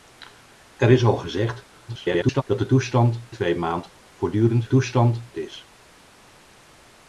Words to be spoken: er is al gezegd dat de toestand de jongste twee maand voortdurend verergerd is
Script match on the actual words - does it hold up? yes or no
no